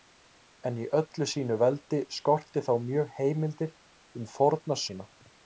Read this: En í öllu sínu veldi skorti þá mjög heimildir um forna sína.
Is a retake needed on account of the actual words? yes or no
no